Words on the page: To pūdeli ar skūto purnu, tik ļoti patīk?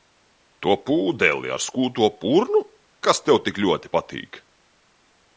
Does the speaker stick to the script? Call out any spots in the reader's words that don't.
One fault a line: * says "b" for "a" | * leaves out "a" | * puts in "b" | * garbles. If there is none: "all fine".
* puts in "kas tev"